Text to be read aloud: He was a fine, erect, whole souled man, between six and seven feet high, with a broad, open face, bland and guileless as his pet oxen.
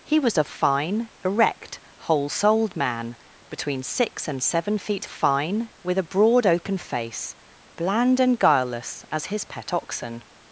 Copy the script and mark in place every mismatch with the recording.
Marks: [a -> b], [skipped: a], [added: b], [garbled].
He was a fine, erect, whole souled man, between six and seven feet [high, -> fine] with a broad, open face, bland and guileless as his pet oxen.